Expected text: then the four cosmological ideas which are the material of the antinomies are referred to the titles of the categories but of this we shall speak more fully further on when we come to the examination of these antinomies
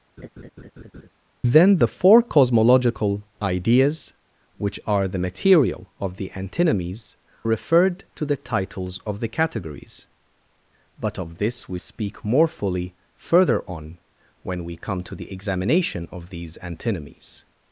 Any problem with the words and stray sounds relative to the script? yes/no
yes